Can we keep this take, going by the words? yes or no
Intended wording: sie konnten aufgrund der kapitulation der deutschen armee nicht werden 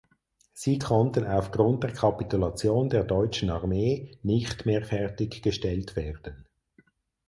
no